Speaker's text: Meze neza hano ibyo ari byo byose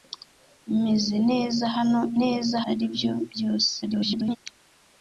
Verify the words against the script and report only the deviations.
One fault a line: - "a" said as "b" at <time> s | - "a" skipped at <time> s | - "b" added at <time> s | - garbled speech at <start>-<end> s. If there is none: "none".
- "ibyo" said as "neza" at 2.2 s
- garbled speech at 3.8-4.4 s